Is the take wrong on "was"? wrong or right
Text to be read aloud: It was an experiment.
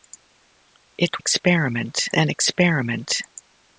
wrong